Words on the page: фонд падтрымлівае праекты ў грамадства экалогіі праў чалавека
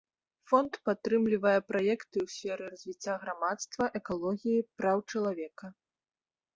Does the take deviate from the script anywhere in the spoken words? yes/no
yes